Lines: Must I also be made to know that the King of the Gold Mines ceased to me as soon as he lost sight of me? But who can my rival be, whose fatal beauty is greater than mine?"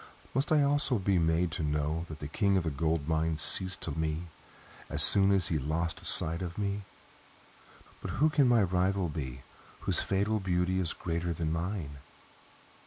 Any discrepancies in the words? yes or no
no